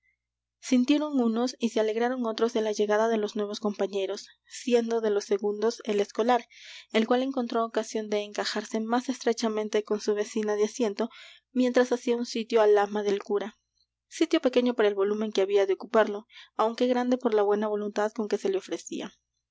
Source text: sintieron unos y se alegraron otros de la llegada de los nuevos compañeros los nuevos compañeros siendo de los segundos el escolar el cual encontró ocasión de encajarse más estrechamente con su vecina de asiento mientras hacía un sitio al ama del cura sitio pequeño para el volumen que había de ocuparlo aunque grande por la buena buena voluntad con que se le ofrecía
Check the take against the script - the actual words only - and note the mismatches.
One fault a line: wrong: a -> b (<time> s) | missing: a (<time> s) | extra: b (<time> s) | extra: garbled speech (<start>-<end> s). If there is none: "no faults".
missing: los nuevos compañeros (4.2 s)
missing: buena (17.7 s)